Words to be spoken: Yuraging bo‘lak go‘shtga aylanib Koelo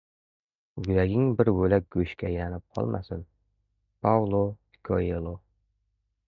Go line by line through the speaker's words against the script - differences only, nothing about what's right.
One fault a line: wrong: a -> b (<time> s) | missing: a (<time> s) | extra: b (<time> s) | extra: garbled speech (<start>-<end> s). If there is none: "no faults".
extra: bir (1.4 s)
extra: qolmasin Paulo (2.8 s)